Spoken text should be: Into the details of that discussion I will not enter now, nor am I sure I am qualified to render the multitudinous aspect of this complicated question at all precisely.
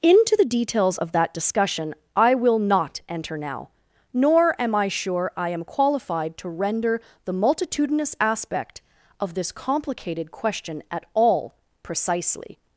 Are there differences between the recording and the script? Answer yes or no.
no